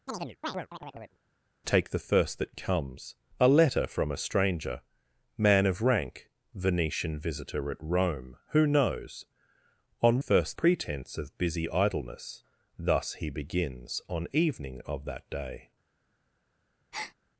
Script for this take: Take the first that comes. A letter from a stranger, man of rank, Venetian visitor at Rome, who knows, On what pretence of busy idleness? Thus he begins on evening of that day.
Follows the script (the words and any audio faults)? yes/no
no